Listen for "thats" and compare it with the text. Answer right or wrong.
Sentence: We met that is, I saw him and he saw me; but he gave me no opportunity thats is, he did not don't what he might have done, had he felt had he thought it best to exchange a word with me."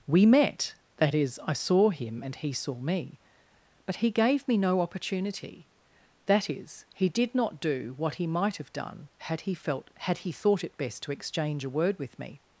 wrong